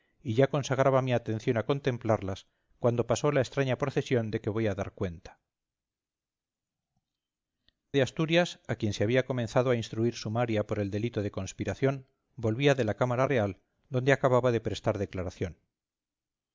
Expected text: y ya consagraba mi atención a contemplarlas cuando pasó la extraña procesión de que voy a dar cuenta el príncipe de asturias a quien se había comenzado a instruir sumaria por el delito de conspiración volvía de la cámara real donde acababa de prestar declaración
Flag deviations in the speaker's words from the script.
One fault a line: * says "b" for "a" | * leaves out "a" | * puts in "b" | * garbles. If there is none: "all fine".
* leaves out "el príncipe"